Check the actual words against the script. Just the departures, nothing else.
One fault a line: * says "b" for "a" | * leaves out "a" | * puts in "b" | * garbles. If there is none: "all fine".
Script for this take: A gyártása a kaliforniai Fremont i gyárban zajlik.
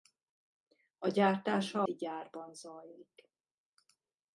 * leaves out "a kaliforniai Fremont"